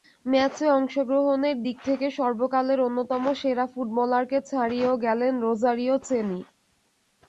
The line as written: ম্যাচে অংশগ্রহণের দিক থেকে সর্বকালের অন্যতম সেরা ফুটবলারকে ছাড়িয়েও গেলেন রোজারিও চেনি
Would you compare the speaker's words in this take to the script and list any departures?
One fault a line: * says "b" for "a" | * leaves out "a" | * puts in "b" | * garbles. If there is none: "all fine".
all fine